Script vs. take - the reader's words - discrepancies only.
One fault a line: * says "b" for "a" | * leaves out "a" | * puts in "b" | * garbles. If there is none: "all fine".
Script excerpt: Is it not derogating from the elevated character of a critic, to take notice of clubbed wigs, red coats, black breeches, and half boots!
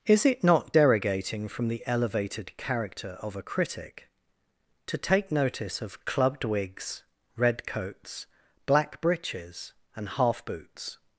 all fine